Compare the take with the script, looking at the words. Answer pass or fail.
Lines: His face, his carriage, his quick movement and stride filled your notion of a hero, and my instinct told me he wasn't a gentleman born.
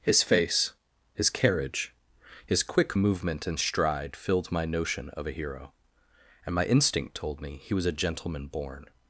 fail